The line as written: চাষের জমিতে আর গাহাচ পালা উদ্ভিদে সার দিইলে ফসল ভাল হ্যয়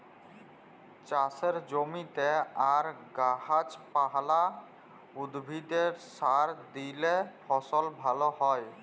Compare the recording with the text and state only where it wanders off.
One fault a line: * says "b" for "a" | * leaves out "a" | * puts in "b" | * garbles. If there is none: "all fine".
all fine